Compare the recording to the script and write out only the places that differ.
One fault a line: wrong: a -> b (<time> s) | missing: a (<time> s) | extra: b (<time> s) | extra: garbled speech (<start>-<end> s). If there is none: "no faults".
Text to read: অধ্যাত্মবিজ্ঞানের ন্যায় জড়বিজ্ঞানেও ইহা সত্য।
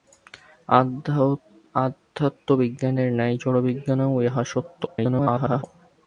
extra: garbled speech (4.9-5.6 s)